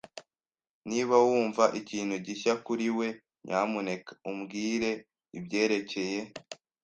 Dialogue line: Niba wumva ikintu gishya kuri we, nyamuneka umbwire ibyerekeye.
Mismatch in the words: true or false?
false